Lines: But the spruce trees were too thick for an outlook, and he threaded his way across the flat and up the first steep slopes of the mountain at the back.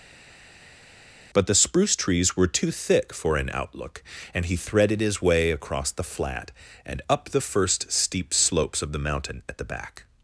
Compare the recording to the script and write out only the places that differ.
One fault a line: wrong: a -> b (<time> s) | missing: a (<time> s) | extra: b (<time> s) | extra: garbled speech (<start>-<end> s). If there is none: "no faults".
no faults